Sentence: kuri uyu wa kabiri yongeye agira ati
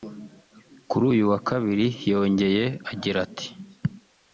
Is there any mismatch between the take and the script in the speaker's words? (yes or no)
no